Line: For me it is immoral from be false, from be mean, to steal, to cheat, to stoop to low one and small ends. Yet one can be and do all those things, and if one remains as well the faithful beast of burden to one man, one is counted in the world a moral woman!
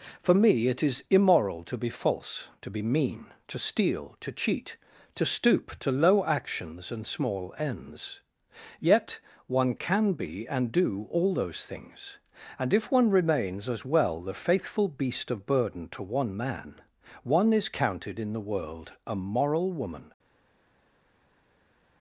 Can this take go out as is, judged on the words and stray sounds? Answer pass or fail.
fail